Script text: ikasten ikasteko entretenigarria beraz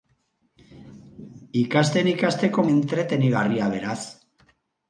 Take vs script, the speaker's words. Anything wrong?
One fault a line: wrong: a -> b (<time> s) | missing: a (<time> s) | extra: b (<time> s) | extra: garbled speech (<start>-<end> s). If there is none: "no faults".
no faults